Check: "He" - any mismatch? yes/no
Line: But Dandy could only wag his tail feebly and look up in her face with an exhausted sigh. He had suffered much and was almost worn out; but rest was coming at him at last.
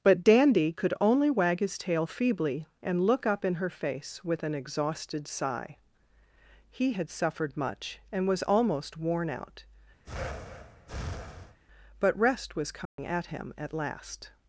no